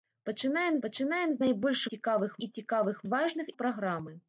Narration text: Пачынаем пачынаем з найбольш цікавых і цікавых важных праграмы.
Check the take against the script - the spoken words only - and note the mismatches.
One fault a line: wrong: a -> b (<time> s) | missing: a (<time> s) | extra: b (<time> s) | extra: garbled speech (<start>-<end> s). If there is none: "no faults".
no faults